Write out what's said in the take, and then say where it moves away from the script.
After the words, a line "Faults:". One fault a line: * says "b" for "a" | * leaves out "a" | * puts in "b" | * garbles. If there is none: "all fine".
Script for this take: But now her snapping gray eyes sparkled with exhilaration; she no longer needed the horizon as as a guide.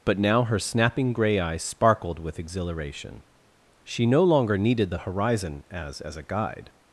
But now her snapping gray eyes sparkled with exhilaration; she no longer needed the horizon as as a guide.
Faults:
all fine